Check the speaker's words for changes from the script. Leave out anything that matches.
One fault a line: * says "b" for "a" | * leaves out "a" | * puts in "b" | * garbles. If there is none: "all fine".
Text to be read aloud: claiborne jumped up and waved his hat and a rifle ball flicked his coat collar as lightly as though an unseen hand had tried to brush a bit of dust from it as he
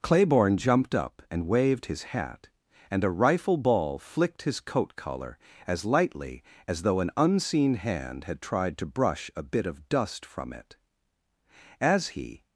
all fine